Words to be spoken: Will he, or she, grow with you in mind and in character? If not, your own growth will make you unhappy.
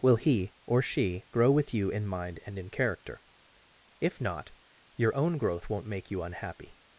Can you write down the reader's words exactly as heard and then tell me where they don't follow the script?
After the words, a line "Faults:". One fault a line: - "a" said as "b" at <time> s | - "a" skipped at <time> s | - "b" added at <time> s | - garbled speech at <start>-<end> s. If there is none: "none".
Will he, or she, grow with you in mind and in character? If not, your own growth won't make you unhappy.
Faults:
- "will" said as "won't" at 5.7 s